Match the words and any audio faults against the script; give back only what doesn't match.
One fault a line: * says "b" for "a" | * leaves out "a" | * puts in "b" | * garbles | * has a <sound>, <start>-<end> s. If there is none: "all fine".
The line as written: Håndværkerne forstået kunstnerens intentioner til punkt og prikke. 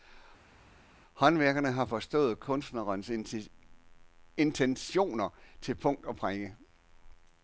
* puts in "har"